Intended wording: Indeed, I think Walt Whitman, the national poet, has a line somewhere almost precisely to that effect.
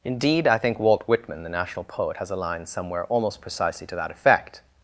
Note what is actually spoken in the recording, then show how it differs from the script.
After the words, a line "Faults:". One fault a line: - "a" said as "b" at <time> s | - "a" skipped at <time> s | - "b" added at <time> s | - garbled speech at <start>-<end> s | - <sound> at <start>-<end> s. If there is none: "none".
Indeed, I think Walt Whitman, the national poet, has a line somewhere almost precisely to that effect.
Faults:
none